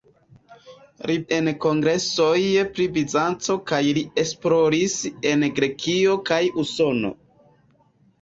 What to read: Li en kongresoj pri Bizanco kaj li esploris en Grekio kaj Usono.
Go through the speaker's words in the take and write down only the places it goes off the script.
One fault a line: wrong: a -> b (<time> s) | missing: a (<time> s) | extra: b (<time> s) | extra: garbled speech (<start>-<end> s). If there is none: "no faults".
no faults